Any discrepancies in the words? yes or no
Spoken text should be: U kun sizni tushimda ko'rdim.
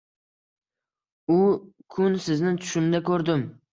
no